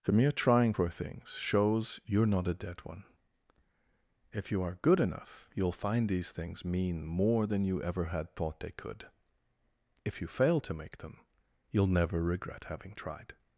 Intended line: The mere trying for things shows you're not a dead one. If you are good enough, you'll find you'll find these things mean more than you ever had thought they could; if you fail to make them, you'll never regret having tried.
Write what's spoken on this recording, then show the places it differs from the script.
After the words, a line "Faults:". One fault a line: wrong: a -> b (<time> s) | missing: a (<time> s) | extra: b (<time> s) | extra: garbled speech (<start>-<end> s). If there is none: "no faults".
The mere trying for things shows you're not a dead one. If you are good enough, you'll find these things mean more than you ever had thought they could; if you fail to make them, you'll never regret having tried.
Faults:
missing: you'll find (6.1 s)